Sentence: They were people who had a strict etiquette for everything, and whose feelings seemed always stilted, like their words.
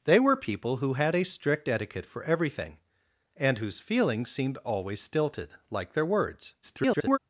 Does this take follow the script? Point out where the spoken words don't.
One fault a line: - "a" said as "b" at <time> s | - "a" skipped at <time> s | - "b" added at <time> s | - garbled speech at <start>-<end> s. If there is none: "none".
- garbled speech at 6.6-7.2 s